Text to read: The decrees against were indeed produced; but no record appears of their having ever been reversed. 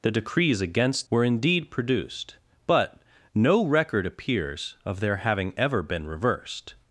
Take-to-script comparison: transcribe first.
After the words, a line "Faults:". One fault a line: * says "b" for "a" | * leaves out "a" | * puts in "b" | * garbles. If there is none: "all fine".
The decrees against were indeed produced; but no record appears of their having ever been reversed.
Faults:
all fine